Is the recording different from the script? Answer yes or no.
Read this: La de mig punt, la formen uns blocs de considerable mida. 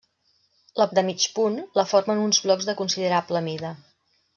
no